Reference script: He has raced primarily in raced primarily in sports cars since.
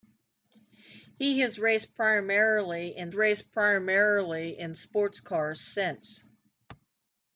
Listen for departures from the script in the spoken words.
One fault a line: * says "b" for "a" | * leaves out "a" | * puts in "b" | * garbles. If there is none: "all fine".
all fine